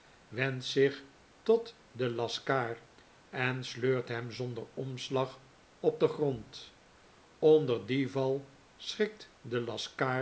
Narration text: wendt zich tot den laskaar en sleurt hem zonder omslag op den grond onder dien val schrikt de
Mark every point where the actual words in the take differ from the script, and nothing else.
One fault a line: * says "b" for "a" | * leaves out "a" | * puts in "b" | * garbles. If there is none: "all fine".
all fine